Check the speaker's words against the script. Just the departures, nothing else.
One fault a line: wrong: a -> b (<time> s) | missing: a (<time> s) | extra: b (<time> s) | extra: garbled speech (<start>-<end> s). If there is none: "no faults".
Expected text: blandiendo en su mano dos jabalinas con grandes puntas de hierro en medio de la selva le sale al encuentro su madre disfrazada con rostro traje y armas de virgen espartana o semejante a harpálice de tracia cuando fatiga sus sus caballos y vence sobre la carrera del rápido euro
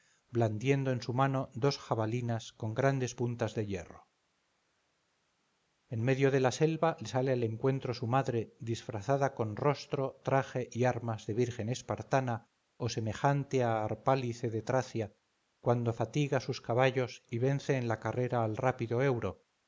missing: sus (16.6 s)
wrong: sobre -> en (17.8 s)
wrong: del -> al (18.4 s)